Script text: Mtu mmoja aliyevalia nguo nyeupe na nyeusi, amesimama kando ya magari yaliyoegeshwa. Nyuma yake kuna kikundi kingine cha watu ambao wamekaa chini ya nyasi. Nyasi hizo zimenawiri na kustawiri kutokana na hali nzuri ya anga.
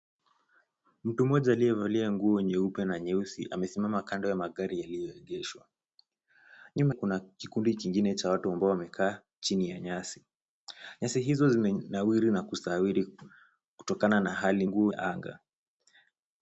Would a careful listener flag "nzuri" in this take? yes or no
yes